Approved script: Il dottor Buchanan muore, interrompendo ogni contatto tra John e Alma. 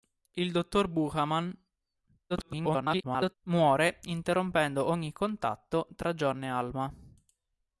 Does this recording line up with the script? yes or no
no